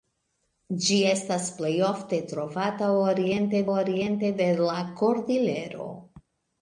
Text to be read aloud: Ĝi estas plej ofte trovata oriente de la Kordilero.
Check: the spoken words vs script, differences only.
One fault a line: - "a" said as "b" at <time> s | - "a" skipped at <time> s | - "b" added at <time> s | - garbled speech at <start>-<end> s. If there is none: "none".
- "oriente" added at 3.7 s